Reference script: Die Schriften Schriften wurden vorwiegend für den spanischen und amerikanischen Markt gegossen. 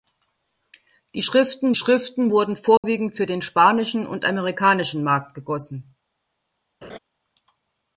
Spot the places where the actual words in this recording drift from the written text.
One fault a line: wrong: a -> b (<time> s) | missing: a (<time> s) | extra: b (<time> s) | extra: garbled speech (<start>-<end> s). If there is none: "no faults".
no faults